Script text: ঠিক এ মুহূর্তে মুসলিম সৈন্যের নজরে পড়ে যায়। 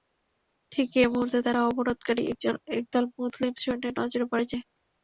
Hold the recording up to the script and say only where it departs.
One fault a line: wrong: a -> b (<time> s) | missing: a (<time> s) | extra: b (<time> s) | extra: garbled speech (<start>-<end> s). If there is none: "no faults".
extra: তারা অবরোধকারী একদল (1.4 s)